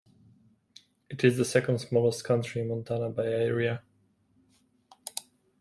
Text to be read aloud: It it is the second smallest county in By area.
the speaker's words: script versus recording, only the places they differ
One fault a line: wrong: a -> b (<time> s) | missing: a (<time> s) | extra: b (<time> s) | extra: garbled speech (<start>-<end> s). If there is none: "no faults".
missing: it (1.2 s)
extra: Montana (2.7 s)